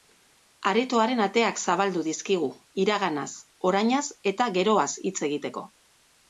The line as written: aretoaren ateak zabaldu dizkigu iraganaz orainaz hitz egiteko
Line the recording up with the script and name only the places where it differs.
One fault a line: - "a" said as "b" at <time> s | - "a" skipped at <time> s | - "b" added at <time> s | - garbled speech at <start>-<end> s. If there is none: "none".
- "eta geroaz" added at 4.3 s